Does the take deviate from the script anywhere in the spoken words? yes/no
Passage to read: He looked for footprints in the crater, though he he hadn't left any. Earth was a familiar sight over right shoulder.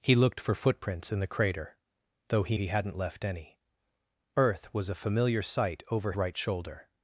no